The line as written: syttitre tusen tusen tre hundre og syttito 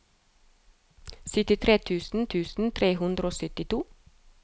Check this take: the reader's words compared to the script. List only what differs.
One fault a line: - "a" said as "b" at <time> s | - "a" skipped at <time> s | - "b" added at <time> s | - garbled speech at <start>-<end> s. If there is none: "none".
none